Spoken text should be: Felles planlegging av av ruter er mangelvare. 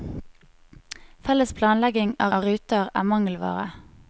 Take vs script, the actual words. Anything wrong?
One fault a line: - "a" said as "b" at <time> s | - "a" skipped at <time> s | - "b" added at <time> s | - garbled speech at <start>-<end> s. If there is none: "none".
none